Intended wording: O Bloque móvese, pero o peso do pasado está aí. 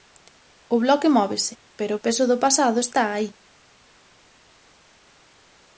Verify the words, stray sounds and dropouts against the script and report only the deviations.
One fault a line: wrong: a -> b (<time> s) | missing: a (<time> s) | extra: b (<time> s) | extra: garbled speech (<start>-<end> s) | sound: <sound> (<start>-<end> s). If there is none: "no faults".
no faults